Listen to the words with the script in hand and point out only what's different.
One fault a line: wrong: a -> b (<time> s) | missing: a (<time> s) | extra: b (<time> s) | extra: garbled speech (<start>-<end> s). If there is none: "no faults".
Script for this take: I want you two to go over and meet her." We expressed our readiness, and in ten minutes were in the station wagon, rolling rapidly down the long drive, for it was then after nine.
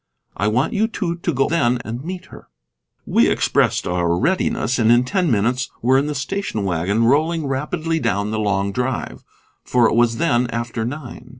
wrong: over -> then (1.5 s)